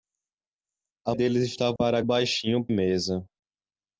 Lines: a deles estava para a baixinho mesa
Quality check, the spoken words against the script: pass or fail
pass